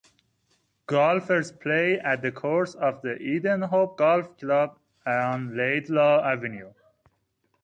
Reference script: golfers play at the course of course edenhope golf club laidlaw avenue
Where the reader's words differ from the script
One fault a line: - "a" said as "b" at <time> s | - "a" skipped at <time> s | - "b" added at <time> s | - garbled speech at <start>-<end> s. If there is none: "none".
- "course" said as "the" at 3.0 s
- "on" added at 5.0 s